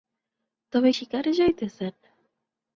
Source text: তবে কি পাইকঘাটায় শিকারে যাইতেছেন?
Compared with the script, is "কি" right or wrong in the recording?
wrong